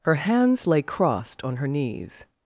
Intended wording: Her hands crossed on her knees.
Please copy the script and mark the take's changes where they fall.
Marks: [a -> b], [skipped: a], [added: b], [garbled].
Her hands [added: lay] crossed on her knees.